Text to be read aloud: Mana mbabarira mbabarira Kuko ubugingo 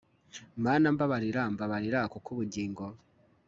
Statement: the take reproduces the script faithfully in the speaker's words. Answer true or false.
true